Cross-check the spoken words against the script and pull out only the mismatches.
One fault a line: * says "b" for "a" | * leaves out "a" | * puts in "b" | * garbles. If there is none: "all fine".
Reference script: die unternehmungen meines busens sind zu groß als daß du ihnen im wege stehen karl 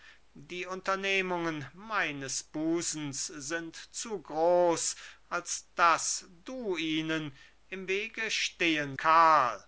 all fine